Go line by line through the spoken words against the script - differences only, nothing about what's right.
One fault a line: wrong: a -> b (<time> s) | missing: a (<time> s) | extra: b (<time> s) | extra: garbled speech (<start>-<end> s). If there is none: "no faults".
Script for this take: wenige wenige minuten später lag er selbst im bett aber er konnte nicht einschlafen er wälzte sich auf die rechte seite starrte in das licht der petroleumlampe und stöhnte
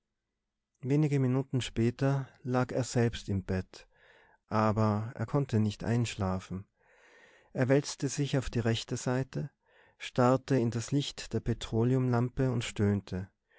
missing: wenige (1.2 s)